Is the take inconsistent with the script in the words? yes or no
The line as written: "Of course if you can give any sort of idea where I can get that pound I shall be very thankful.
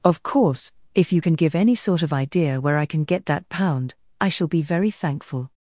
no